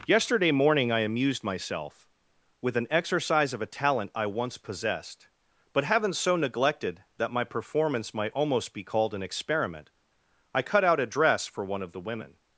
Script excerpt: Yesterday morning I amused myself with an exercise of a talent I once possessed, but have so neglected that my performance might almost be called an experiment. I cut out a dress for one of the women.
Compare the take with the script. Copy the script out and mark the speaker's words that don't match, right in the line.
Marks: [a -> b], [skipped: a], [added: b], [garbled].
Yesterday morning I amused myself with an exercise of a talent I once possessed, but [have -> haven't] so neglected that my performance might almost be called an experiment. I cut out a dress for one of the women.